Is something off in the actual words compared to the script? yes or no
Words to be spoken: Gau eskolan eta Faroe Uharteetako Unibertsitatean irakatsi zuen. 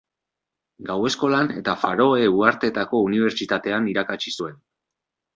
no